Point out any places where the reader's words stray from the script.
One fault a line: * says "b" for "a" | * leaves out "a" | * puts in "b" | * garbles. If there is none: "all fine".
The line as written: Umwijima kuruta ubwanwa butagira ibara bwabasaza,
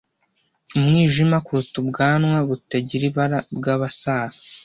all fine